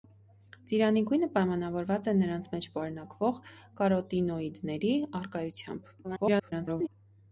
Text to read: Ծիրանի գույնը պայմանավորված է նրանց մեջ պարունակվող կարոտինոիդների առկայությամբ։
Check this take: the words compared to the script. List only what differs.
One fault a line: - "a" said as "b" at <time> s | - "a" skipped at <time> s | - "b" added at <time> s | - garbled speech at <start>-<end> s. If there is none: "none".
- garbled speech at 6.0-6.9 s